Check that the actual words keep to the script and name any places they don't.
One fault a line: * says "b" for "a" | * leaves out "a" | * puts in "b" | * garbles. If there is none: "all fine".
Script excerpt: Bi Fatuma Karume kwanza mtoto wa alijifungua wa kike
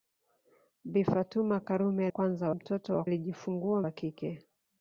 all fine